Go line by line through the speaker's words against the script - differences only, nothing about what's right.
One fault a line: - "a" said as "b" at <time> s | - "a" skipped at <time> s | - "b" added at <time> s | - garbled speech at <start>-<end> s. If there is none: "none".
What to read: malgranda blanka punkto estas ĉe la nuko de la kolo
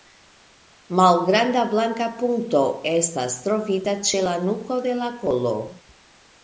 - "trovita" added at 3.5 s